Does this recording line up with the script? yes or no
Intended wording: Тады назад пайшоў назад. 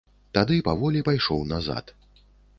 no